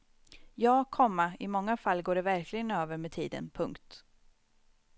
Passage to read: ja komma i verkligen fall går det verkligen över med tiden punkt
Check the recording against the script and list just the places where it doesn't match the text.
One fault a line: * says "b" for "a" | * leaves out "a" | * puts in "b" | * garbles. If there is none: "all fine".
* says "många" for "verkligen"